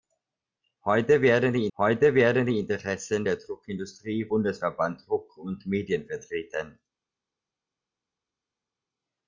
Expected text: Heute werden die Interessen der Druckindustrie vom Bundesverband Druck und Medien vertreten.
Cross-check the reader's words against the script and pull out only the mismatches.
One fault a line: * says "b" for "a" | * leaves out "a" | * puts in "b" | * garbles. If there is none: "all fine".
* puts in "heute werden die"
* leaves out "vom"